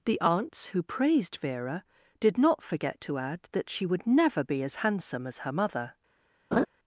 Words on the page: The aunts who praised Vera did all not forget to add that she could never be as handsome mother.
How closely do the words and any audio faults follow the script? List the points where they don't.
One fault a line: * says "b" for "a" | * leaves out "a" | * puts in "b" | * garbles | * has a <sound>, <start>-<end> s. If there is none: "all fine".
* leaves out "all"
* says "would" for "could"
* puts in "as her"
* has a laugh, 6.5-6.7 s